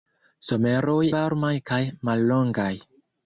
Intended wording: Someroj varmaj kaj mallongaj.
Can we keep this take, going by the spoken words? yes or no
yes